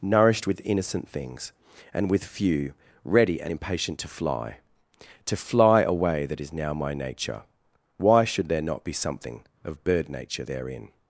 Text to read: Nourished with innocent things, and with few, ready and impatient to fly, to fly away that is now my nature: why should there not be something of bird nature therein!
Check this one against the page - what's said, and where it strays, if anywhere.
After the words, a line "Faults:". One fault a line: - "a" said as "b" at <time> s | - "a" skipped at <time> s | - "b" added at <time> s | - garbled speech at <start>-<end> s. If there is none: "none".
Nourished with innocent things, and with few, ready and impatient to fly, to fly away that is now my nature: why should there not be something of bird nature therein!
Faults:
none